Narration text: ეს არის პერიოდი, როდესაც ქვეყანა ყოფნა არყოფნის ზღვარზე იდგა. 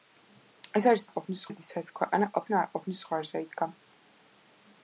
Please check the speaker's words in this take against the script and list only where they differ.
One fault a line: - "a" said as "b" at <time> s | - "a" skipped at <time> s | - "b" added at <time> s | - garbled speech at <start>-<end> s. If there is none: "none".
- "პერიოდი" said as "არყოფნის" at 1.0 s